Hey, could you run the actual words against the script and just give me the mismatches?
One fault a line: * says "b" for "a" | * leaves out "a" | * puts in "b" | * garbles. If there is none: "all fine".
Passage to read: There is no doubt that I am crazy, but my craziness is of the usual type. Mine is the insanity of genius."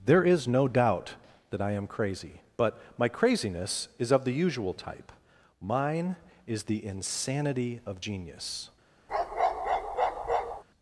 all fine